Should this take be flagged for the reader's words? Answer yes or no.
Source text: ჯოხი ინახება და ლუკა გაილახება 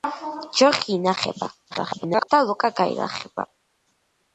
yes